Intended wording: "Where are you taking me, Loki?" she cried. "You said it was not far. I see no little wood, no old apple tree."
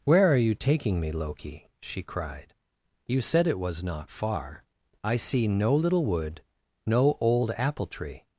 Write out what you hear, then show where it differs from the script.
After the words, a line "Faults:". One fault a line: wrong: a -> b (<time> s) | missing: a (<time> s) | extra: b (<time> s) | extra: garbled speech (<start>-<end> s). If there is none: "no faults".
"Where are you taking me, Loki?" she cried. "You said it was not far. I see no little wood, no old apple tree."
Faults:
no faults